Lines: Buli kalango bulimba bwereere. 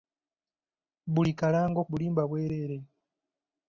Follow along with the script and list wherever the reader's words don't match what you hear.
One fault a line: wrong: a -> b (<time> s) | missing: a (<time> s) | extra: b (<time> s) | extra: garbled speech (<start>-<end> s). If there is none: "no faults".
no faults